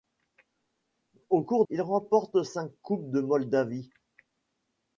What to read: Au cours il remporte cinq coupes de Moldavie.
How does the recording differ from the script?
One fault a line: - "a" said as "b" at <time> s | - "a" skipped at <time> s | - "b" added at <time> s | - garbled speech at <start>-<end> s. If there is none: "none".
none